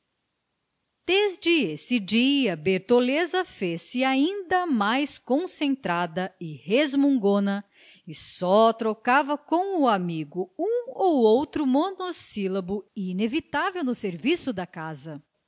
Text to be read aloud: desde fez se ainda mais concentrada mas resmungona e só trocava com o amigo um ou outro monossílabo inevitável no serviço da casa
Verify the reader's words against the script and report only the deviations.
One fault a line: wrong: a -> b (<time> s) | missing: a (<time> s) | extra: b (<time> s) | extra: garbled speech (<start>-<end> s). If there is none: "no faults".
extra: esse dia bertoleza (1.7 s)
wrong: mas -> e (6.4 s)